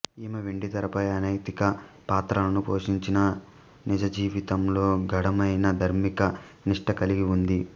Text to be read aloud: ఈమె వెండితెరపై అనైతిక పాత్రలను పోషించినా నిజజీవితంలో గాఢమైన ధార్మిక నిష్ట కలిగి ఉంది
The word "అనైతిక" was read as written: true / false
true